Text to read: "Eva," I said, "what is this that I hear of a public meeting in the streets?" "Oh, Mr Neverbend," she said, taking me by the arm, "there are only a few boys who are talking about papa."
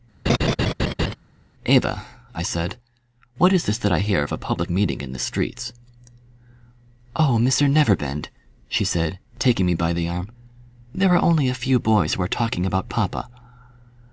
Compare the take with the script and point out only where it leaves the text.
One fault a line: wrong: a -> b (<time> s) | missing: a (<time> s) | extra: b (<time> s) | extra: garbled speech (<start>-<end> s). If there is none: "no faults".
no faults